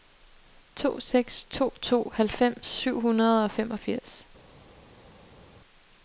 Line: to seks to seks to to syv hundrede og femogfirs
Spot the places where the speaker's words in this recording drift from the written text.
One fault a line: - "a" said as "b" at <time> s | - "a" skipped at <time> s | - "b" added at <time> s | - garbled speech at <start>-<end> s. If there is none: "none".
- "seks" skipped at 1.7 s
- "to" said as "halvfems" at 2.1 s